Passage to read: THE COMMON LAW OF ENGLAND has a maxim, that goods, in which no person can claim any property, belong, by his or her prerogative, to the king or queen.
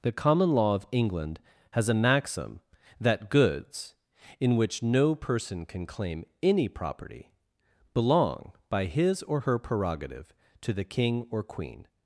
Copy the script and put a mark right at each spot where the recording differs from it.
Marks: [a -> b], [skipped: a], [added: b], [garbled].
THE COMMON LAW OF ENGLAND has a maxim, that goods, in which no person can claim any property, belong, by his or her prerogative, to the king or queen.